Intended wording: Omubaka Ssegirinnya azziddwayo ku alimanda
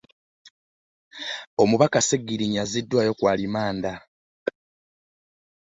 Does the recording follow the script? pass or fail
pass